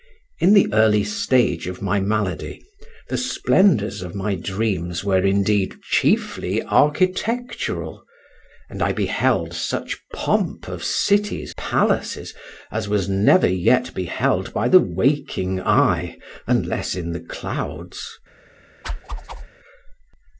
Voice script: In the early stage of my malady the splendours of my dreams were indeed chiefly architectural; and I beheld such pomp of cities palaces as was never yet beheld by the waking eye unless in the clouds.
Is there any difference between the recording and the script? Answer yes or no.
no